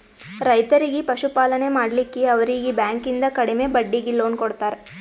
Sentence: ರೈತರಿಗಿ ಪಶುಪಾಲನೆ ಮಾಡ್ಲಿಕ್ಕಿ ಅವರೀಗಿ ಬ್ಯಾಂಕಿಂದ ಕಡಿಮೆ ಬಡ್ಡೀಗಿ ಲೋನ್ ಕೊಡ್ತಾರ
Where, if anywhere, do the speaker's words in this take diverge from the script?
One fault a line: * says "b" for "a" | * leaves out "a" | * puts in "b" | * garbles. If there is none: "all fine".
all fine